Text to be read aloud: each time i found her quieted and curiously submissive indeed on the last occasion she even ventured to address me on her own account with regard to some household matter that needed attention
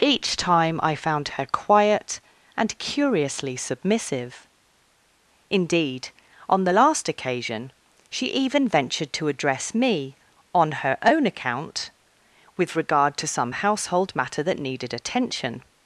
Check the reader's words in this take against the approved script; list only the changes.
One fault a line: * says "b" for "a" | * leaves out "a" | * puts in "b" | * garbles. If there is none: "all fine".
* says "quiet" for "quieted"